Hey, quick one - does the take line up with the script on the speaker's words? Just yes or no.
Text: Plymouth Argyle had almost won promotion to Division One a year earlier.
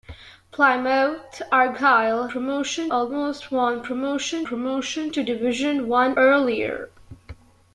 no